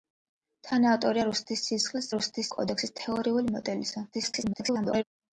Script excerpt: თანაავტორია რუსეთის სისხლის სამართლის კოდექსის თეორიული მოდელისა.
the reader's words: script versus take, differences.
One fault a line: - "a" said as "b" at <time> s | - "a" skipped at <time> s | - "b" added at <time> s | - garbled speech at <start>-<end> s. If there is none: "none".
- "სამართლის" said as "რუსეთის" at 2.1 s
- garbled speech at 4.1-5.0 s